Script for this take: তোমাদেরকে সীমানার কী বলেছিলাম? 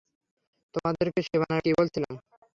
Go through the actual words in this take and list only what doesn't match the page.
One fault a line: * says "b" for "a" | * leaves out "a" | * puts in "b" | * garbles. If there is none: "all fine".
all fine